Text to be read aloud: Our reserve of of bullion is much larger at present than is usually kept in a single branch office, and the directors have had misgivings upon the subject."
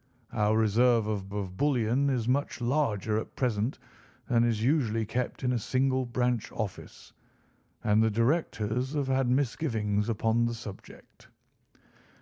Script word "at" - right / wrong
right